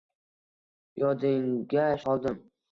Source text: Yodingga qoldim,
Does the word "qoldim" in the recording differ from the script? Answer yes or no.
no